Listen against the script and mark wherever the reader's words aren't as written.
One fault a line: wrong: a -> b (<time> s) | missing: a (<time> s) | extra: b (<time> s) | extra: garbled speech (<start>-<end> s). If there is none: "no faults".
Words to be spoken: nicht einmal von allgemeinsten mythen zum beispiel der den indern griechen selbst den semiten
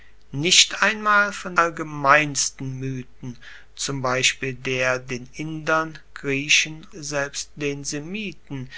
no faults